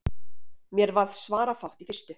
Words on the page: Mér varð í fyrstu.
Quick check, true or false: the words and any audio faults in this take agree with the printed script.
false